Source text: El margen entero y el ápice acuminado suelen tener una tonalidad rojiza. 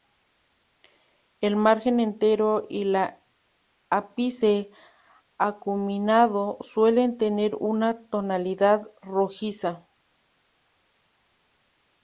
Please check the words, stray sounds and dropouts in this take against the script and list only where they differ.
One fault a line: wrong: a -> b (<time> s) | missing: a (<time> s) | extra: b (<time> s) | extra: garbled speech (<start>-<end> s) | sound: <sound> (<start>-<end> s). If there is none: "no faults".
no faults